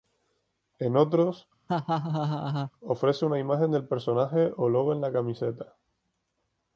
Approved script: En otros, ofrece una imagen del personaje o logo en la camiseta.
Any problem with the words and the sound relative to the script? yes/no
yes